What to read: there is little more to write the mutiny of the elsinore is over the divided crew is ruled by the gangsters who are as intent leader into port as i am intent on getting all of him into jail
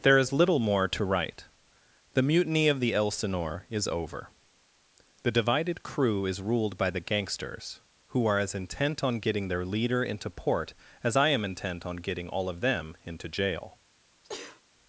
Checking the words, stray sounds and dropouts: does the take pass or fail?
fail